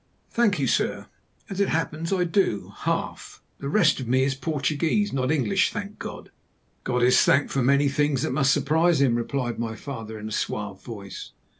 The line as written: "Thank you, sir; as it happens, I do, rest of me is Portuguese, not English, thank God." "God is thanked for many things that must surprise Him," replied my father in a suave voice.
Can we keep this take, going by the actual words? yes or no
no